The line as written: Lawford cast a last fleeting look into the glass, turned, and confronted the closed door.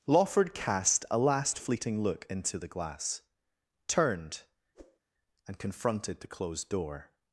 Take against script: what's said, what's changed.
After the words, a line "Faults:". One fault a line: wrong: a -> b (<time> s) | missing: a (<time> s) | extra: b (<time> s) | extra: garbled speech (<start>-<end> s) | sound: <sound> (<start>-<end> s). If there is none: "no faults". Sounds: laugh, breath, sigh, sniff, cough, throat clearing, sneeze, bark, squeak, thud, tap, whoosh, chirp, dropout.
Lawford cast a last fleeting look into the glass, turned, and confronted the closed door.
Faults:
sound: whoosh (4.7-5.0 s)